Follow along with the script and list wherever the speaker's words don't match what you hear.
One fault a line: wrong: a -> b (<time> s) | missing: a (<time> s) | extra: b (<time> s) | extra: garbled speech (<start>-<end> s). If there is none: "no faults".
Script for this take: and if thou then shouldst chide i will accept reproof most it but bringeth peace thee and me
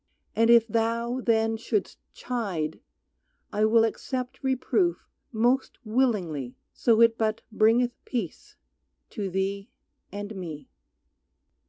extra: willingly so (5.8 s)
extra: to (9.1 s)